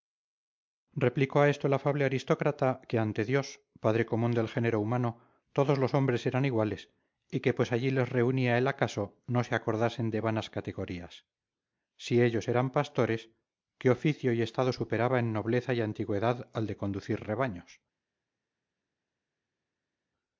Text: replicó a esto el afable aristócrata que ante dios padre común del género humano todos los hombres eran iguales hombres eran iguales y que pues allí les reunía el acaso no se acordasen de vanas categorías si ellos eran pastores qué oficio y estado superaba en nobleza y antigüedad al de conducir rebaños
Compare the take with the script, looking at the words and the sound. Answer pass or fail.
fail